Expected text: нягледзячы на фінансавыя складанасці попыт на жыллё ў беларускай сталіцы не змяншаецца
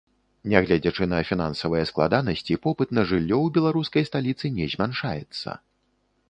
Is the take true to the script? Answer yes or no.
yes